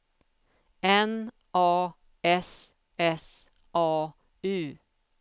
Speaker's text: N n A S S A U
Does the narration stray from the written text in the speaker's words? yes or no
yes